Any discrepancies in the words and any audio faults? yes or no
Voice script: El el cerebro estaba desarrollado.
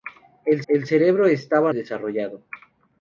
no